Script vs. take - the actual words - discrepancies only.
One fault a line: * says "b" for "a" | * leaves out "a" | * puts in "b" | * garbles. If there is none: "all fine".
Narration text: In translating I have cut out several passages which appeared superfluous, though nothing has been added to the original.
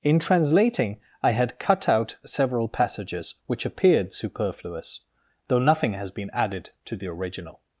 * says "had" for "have"